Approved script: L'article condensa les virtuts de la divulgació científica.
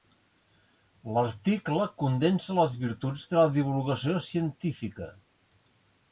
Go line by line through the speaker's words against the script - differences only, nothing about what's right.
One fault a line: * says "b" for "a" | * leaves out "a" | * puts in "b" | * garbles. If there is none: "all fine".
all fine